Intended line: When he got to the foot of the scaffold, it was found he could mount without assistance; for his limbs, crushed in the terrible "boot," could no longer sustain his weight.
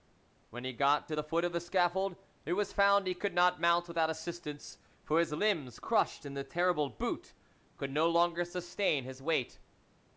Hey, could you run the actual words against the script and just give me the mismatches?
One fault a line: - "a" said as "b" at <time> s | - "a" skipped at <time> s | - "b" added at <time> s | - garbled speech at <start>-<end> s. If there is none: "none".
- "not" added at 3.3 s